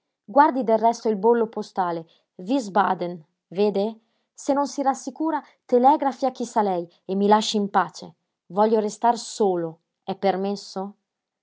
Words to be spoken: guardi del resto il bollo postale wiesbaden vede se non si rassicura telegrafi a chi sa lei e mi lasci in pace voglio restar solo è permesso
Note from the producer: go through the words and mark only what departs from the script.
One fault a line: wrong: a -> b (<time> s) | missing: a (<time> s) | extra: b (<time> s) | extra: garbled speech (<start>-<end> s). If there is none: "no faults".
no faults